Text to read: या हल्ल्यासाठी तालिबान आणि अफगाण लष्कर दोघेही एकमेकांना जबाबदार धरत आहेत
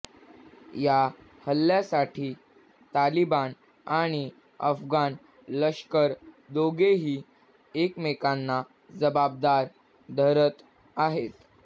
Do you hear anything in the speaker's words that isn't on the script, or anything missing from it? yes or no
no